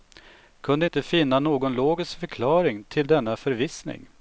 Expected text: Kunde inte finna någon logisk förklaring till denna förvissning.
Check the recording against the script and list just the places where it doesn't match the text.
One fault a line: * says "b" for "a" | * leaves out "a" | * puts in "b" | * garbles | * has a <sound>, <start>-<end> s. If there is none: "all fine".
all fine